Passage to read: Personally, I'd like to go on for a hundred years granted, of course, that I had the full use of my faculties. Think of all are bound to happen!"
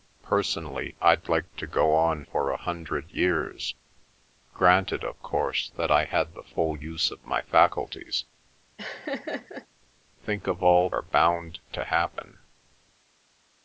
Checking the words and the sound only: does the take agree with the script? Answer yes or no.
no